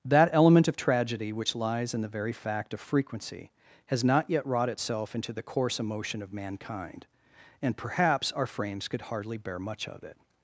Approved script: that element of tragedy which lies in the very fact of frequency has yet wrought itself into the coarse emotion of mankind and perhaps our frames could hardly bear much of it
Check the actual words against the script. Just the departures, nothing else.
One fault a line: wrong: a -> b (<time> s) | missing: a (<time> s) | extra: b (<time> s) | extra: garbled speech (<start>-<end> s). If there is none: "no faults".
extra: not (4.0 s)